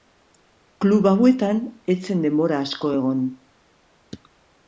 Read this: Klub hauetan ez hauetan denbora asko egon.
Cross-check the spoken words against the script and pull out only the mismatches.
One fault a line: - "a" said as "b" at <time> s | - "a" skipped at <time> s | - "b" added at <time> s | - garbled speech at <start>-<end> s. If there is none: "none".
- "hauetan" said as "zen" at 2.1 s